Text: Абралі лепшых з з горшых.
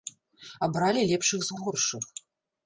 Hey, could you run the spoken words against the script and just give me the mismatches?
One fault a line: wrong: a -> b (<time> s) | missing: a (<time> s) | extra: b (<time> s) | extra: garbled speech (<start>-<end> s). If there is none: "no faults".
no faults